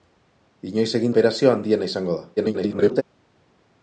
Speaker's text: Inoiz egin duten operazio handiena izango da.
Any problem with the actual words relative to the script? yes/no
yes